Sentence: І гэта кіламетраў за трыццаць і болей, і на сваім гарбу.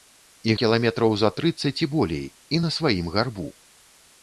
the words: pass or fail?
fail